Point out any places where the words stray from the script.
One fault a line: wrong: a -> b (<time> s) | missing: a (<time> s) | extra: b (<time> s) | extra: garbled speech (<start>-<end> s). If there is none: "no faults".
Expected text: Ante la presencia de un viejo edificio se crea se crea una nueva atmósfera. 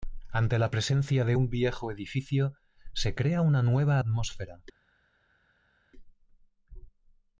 missing: se crea (3.4 s)